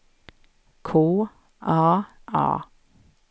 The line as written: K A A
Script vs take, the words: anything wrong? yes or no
no